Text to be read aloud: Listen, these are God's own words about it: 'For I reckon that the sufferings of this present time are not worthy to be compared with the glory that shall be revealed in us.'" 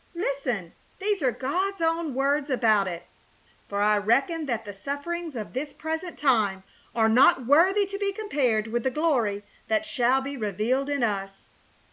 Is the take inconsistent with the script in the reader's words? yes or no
no